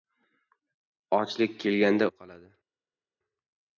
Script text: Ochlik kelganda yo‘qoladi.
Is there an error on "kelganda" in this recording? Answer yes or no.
no